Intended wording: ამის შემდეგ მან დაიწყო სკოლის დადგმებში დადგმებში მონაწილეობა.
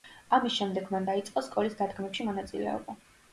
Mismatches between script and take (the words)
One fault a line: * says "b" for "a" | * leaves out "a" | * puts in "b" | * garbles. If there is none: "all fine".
* leaves out "დადგმებში"